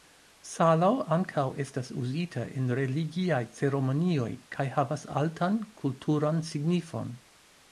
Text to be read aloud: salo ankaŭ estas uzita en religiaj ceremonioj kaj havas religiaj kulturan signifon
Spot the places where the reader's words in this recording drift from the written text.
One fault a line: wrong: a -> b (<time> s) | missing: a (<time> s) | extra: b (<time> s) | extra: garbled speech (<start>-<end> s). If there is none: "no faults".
wrong: religiaj -> altan (5.2 s)